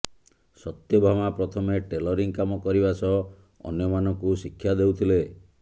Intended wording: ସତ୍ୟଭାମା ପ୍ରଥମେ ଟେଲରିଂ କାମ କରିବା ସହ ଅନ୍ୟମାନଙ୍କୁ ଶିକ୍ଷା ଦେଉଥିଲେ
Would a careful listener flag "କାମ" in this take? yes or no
no